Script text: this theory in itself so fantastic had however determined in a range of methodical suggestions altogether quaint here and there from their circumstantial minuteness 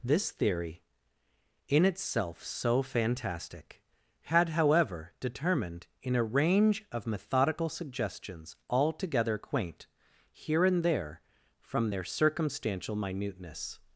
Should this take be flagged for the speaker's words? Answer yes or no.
no